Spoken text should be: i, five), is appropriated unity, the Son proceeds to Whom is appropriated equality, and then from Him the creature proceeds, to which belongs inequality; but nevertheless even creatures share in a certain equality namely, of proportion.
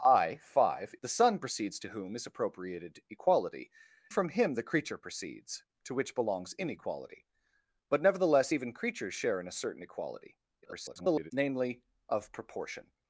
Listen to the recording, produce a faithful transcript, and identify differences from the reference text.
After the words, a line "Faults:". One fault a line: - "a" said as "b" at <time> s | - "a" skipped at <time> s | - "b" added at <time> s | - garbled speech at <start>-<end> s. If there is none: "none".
i, five), the Son proceeds to Whom is appropriated equality, from Him the creature proceeds, to which belongs inequality; but nevertheless even creatures share in a certain equality [garbled] namely, of proportion.
Faults:
- "is appropriated unity" skipped at 0.9 s
- "and then" skipped at 3.7 s
- garbled speech at 10.6-11.3 s